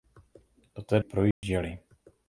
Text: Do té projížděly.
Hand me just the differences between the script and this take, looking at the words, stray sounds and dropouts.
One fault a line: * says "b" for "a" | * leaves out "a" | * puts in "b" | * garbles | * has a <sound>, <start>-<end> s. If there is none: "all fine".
* has a dropout, 1.3-1.4 s